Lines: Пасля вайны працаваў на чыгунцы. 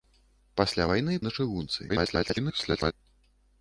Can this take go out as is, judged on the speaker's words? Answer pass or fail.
fail